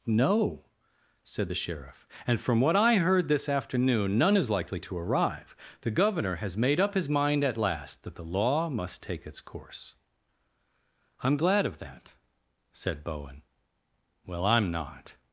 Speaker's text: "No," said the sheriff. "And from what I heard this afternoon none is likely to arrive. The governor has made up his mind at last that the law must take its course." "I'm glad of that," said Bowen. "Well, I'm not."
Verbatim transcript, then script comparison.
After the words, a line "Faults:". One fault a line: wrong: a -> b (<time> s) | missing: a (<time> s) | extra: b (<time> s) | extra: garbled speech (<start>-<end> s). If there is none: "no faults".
"No," said the sheriff. "And from what I heard this afternoon none is likely to arrive. The governor has made up his mind at last that the law must take its course." "I'm glad of that," said Bowen. "Well, I'm not."
Faults:
no faults